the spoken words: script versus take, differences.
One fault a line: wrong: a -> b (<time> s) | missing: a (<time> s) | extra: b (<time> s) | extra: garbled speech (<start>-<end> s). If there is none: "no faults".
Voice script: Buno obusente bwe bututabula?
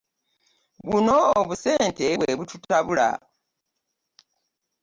no faults